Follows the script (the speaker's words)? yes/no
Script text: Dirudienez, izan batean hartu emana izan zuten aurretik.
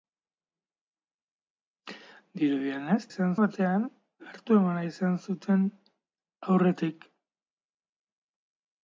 yes